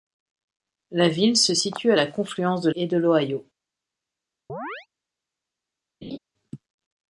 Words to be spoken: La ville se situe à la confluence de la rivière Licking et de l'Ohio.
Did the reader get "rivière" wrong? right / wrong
wrong